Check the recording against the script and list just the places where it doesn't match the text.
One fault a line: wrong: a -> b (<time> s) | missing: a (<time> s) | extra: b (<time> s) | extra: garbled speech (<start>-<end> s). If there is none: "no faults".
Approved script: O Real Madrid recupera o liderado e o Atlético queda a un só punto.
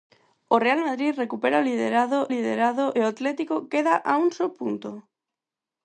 extra: liderado (2.3 s)